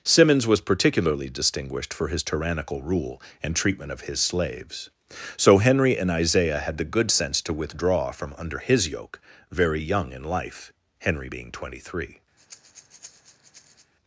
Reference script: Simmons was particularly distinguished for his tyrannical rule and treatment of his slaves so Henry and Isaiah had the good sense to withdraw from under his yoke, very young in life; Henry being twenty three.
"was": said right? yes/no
yes